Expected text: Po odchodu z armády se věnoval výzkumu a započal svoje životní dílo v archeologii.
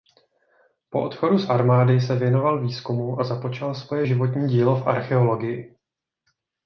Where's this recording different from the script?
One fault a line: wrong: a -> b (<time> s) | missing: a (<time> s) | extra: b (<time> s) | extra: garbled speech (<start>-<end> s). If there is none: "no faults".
no faults